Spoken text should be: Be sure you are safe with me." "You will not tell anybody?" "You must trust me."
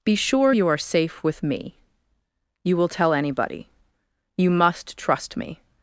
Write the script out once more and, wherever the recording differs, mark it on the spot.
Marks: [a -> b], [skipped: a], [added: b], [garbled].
Be sure you are safe with me." "You will [skipped: not] tell anybody?" "You must trust me."